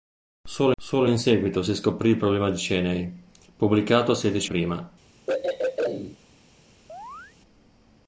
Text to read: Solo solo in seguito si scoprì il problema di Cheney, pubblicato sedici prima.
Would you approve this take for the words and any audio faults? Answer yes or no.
no